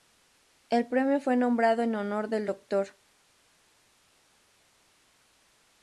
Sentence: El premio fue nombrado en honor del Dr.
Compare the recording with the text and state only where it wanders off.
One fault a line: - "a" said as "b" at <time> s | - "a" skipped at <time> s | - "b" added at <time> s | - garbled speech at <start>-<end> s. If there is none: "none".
none